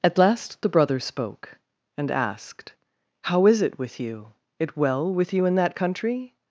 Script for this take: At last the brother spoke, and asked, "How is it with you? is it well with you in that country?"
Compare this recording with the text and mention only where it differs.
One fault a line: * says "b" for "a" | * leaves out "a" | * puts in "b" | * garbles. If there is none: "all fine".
* leaves out "is"